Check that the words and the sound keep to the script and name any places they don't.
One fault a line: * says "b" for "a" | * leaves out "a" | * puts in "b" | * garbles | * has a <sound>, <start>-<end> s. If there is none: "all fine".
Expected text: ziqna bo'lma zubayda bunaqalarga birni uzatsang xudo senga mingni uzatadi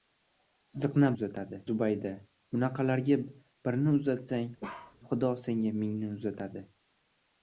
* says "uzatadi" for "bo'lma"
* has a bark, 4.6-5.0 s